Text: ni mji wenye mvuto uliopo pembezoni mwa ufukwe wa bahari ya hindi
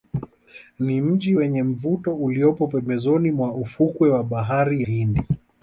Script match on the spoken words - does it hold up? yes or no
no